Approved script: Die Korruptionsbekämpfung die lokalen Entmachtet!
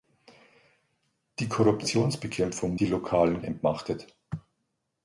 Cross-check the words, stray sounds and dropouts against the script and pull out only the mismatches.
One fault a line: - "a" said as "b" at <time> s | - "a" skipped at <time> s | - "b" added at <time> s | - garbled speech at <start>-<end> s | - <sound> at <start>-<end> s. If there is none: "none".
none